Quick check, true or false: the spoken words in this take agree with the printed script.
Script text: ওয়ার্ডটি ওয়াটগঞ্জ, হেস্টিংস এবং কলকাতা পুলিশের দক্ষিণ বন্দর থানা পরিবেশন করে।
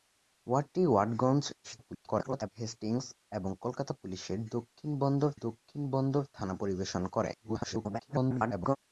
false